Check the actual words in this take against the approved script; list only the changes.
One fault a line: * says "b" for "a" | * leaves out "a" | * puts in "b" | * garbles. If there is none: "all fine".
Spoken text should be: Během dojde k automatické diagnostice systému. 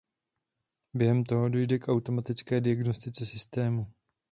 * puts in "toho"